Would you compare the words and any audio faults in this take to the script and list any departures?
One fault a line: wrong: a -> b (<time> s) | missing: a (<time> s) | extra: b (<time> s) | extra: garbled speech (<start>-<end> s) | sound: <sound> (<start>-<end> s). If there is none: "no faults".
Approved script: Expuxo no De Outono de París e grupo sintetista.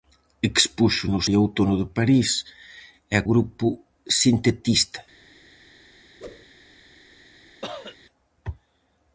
sound: whoosh (6.2-6.5 s)
sound: cough (7.6-8.0 s)